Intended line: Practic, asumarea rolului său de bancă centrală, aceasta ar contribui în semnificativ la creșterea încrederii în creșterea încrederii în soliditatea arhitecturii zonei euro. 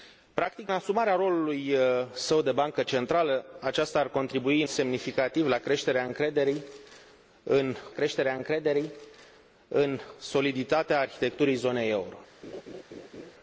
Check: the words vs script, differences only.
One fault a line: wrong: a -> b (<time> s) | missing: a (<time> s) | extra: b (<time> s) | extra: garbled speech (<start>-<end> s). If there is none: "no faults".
no faults